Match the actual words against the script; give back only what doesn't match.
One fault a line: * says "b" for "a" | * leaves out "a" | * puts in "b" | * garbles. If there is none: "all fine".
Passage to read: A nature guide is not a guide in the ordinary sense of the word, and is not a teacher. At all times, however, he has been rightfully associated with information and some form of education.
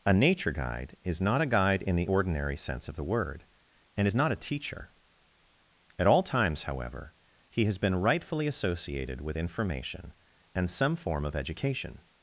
all fine